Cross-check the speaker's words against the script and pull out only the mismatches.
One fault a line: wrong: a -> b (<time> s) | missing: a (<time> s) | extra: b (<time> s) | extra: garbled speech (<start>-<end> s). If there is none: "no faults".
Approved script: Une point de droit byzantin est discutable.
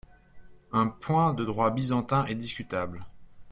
wrong: Une -> Un (0.7 s)